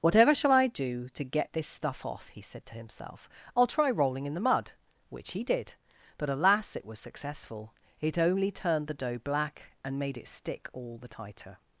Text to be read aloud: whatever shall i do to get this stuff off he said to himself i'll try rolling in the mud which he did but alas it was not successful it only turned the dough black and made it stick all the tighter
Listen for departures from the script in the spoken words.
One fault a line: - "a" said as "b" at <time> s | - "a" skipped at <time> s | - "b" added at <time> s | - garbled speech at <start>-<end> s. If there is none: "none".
- "not" skipped at 7.0 s